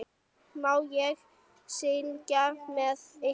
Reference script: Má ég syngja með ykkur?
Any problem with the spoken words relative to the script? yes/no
no